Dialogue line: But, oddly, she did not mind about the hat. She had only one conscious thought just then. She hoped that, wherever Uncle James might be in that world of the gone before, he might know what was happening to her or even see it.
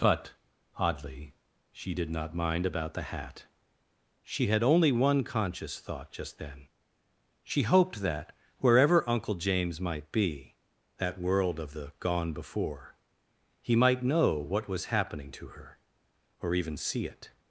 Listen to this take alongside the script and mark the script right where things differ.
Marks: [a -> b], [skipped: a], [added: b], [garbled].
But, oddly, she did not mind about the hat. She had only one conscious thought just then. She hoped that, wherever Uncle James might be [skipped: in] that world of the gone before, he might know what was happening to her or even see it.